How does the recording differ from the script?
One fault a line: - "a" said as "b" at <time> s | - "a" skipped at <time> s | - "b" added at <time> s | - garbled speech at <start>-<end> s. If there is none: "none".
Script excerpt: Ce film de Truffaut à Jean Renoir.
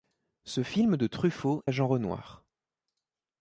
none